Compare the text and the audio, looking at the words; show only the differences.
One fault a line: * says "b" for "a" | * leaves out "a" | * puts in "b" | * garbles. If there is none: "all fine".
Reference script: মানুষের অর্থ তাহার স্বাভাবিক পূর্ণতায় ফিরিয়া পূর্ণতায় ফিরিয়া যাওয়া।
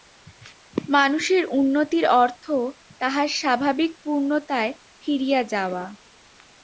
* puts in "উন্নতির"
* leaves out "পূর্ণতায় ফিরিয়া"